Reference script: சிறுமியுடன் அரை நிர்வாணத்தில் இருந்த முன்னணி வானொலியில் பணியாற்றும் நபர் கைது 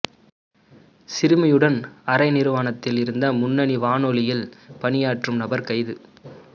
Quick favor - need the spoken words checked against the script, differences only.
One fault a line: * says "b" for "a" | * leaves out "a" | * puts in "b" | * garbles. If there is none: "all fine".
all fine